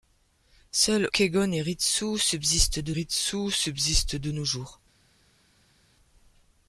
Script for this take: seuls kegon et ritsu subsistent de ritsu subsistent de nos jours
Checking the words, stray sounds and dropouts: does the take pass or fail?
pass